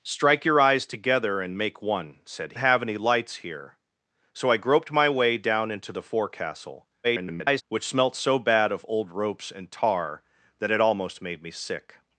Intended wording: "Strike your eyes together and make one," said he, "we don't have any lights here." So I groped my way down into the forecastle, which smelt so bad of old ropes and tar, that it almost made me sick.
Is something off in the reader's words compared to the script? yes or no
yes